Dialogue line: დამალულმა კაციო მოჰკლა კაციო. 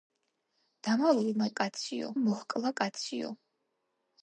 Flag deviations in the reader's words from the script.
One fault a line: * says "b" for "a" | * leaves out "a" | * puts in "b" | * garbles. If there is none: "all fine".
all fine